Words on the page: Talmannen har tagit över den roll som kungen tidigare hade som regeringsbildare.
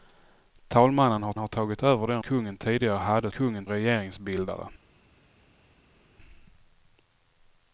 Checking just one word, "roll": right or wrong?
wrong